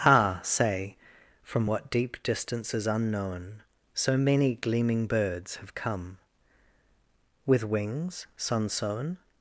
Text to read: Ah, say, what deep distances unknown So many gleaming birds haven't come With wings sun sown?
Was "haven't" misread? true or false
true